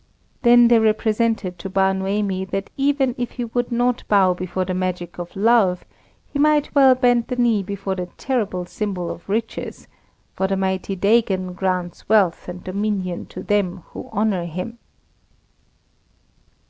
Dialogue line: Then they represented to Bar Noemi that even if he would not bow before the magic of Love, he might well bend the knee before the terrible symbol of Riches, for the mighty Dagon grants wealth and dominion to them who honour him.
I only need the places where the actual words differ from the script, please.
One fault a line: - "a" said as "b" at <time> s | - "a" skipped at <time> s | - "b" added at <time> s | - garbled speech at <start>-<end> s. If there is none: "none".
none